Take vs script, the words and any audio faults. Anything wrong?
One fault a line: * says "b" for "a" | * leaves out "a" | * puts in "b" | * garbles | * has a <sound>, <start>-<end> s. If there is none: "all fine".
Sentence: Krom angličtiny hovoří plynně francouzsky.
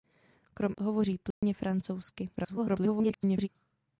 * leaves out "angličtiny"
* has a dropout, 1.3-1.4 s
* garbles